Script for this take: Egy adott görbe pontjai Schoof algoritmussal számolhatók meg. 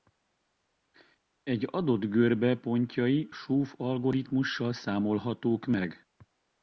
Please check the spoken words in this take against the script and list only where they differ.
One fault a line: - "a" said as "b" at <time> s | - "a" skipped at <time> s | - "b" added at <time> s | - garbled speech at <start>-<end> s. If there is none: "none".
none